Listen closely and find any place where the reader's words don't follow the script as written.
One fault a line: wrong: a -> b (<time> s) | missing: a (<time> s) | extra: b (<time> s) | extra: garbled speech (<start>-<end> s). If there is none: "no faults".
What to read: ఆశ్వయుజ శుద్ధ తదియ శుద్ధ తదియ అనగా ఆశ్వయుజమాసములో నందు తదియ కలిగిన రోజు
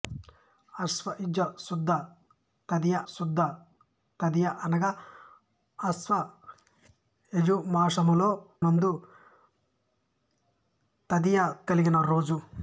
no faults